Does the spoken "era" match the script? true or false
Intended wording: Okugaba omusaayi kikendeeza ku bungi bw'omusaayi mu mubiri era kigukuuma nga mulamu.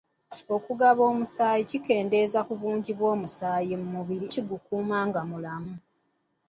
false